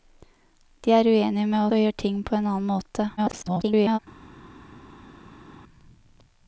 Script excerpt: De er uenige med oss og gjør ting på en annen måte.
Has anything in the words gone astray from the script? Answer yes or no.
yes